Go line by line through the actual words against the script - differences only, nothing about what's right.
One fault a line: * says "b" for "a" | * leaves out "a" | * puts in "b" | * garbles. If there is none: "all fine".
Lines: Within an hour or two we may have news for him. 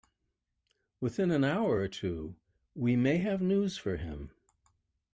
all fine